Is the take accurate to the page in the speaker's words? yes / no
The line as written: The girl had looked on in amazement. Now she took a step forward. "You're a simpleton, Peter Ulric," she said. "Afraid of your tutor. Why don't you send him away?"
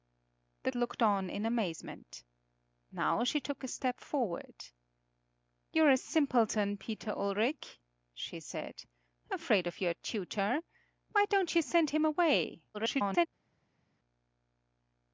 no